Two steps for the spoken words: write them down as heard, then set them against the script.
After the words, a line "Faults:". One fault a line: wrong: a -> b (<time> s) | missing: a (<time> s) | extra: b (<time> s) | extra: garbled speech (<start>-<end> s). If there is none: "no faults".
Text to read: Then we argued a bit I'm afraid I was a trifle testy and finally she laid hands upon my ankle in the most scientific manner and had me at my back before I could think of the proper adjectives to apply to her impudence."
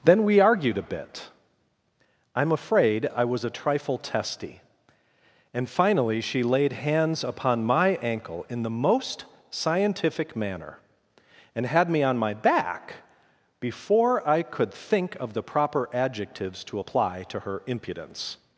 Then we argued a bit I'm afraid I was a trifle testy and finally she laid hands upon my ankle in the most scientific manner and had me on my back before I could think of the proper adjectives to apply to her impudence."
Faults:
wrong: at -> on (12.0 s)